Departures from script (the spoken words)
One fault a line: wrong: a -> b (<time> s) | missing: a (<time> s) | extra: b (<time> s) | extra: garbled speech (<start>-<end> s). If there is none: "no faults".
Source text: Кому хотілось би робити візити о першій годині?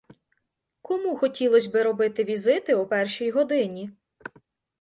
no faults